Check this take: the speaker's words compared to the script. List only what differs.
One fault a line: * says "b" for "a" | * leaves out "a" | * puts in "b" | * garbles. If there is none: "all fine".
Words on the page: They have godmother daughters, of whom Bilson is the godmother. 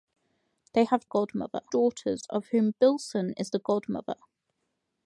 all fine